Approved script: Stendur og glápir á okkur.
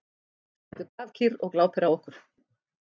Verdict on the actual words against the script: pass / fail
fail